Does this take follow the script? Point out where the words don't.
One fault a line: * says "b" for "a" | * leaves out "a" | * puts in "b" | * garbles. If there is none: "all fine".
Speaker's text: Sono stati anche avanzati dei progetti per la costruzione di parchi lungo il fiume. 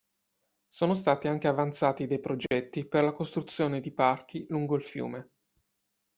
all fine